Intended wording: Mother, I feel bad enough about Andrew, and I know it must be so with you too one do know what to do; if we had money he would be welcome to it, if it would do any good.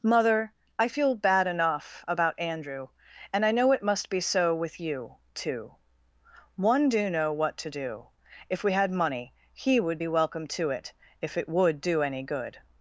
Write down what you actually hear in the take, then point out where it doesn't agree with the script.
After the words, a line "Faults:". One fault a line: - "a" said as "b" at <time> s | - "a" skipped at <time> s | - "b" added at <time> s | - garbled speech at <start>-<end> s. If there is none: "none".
Mother, I feel bad enough about Andrew, and I know it must be so with you too one do know what to do; if we had money he would be welcome to it, if it would do any good.
Faults:
none